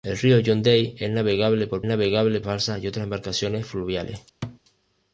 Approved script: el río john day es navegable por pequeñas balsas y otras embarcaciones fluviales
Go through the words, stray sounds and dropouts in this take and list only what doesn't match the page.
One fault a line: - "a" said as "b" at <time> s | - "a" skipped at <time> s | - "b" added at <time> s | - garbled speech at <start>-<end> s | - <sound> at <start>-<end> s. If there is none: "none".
- "pequeñas" said as "navegable" at 1.8 s
- thud at 4.4-4.6 s